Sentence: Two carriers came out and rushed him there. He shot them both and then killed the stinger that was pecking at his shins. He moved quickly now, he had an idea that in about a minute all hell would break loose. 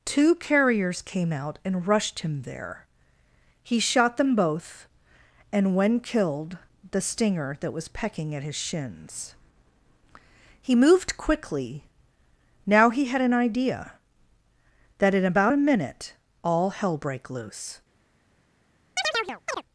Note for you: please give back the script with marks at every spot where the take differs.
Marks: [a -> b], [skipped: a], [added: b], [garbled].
Two carriers came out and rushed him there. He shot them both and [then -> when] killed the stinger that was pecking at his shins. He moved quickly now, he had an idea that in about a minute all hell [skipped: would] break loose.